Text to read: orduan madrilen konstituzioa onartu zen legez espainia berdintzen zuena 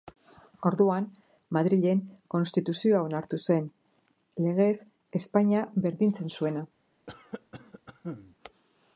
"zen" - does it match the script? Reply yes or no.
yes